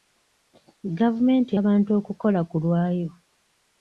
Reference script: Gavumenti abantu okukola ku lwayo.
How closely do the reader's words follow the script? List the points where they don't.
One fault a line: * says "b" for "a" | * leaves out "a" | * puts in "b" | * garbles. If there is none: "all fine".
all fine